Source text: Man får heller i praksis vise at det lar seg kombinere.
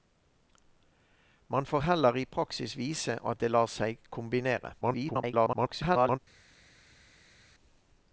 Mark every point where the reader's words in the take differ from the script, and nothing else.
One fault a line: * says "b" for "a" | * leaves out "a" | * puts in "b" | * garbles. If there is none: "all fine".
* garbles